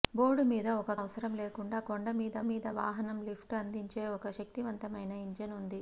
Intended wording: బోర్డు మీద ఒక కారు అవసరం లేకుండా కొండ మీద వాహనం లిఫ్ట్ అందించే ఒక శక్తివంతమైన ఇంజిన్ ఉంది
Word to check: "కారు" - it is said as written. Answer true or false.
false